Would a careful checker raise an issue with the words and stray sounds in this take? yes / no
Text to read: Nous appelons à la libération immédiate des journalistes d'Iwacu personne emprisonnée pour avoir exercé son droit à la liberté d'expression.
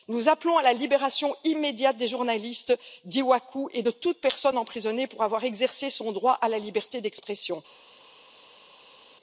yes